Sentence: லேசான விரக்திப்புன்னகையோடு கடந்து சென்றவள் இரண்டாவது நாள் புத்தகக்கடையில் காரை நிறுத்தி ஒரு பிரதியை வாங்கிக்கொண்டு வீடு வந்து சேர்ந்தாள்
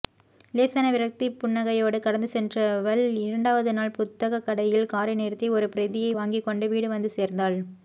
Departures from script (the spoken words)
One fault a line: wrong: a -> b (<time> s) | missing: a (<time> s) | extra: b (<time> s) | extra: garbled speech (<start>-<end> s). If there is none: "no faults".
no faults